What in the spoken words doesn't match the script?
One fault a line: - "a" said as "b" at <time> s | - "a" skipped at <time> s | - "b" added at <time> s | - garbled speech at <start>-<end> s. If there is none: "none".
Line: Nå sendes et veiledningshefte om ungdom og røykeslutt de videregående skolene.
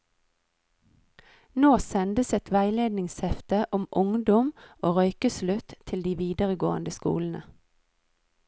- "til" added at 5.8 s